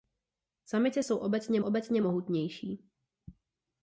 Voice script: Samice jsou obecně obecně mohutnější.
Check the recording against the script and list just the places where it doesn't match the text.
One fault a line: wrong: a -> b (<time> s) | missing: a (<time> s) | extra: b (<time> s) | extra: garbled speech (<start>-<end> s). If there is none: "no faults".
no faults